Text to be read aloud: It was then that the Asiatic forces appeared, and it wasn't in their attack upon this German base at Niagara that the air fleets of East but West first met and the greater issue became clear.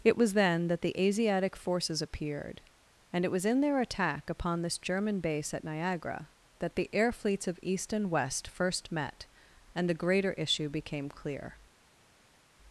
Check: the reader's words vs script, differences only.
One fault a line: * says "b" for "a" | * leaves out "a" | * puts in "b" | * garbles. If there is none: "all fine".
* says "was" for "wasn't"
* says "and" for "but"